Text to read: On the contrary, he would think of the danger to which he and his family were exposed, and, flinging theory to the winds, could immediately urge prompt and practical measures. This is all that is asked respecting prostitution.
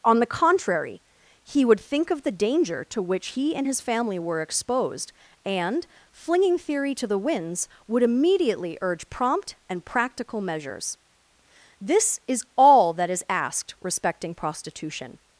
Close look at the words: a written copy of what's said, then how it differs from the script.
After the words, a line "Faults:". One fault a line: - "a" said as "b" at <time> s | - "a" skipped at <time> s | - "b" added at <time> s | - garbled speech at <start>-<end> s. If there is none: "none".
On the contrary, he would think of the danger to which he and his family were exposed, and, flinging theory to the winds, would immediately urge prompt and practical measures. This is all that is asked respecting prostitution.
Faults:
- "could" said as "would" at 7.9 s